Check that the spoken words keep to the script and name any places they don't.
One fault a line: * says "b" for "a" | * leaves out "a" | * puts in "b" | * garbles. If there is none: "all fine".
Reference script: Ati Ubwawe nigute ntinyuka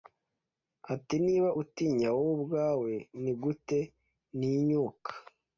* puts in "Niba utinya wowe"